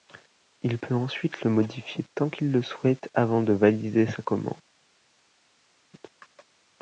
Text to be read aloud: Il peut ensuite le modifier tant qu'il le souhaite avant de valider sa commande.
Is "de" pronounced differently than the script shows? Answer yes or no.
no